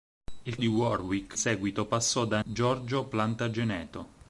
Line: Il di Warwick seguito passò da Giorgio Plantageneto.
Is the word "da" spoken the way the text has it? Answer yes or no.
yes